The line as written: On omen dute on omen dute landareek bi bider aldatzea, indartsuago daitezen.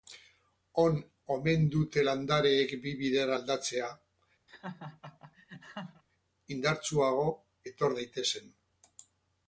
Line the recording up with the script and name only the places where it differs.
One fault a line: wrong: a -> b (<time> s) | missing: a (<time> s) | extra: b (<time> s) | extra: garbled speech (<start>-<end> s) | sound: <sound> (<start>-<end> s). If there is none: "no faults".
missing: on omen dute (2.0 s)
sound: laugh (4.5-6.0 s)
extra: etor (7.7 s)